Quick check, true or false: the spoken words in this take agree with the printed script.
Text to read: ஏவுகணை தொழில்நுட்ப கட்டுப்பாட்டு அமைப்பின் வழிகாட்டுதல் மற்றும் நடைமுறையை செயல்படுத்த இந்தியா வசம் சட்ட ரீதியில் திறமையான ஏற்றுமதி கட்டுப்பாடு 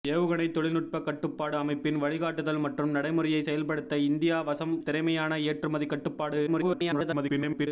false